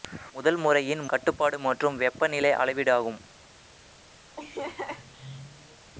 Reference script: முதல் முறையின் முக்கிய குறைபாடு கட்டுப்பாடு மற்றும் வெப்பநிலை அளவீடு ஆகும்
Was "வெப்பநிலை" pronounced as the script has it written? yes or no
yes